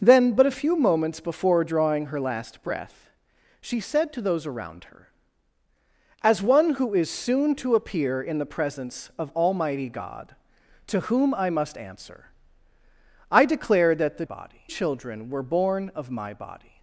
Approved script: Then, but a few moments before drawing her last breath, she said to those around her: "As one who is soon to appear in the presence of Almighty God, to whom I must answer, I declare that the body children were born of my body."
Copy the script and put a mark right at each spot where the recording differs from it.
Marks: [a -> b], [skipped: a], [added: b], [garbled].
Then, but a few moments before drawing her last breath, she said to those around her: "As one who is soon to appear in the presence of Almighty God, to whom I must answer, I declare that the body children were born of my body."